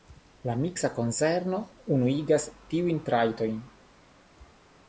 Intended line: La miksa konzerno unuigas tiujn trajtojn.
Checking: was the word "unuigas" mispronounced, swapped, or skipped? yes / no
no